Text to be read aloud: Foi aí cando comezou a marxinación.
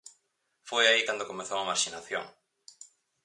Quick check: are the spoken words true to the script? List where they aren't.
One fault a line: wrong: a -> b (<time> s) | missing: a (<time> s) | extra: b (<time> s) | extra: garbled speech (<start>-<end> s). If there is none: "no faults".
no faults